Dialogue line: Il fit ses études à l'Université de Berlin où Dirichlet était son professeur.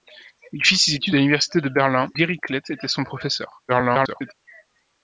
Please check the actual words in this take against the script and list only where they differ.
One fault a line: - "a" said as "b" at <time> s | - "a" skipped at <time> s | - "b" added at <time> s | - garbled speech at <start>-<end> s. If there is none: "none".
- "où" skipped at 2.1 s
- garbled speech at 3.7-4.3 s